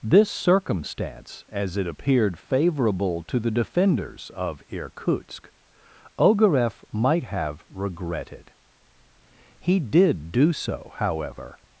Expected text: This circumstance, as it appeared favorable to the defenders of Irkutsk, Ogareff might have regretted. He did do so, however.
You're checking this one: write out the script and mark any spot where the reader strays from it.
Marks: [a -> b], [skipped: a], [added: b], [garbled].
This circumstance, as it appeared favorable to the defenders of Irkutsk, Ogareff might have regretted. He did do so, however.